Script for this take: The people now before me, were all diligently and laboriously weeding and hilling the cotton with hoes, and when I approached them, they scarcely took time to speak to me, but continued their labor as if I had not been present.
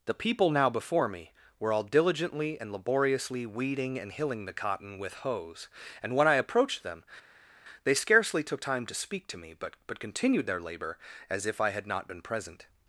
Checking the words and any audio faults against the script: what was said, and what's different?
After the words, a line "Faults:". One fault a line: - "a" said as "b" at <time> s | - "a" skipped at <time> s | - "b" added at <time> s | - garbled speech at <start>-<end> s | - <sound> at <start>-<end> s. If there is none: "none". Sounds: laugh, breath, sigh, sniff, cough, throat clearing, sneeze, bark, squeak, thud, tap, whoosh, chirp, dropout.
The people now before me, were all diligently and laboriously weeding and hilling the cotton with hoes, and when I approached them, they scarcely took time to speak to me, but but continued their labor as if I had not been present.
Faults:
- "but" added at 9.9 s